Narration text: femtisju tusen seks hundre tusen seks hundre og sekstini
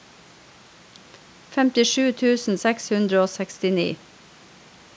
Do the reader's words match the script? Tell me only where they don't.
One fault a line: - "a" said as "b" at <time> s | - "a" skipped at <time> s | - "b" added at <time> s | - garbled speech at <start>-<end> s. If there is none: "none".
- "tusen seks hundre" skipped at 3.2 s